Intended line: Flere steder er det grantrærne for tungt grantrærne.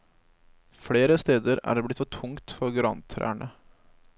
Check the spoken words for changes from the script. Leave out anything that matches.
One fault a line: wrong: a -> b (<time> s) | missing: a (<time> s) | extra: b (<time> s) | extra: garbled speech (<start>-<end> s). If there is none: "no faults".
wrong: grantrærne -> blitt (1.9 s)
extra: for (2.6 s)